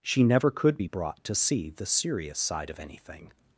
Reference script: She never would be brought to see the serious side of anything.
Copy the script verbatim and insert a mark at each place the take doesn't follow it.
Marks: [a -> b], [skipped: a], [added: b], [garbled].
She never [would -> could] be brought to see the serious side of anything.